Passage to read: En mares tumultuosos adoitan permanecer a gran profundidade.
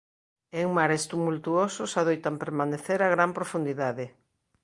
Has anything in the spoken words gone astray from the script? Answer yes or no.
no